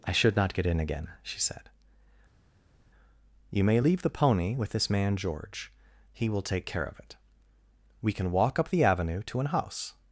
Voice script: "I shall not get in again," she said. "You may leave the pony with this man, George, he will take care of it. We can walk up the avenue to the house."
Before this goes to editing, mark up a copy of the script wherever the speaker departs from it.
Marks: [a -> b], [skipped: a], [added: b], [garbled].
"I [shall -> should] not get in again," she said. "You may leave the pony with this man, George, he will take care of it. We can walk up the avenue to [the -> an] house."